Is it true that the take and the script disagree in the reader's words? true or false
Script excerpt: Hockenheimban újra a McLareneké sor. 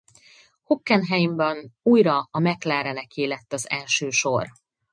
true